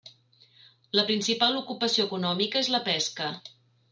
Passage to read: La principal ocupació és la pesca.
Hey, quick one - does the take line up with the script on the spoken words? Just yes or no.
no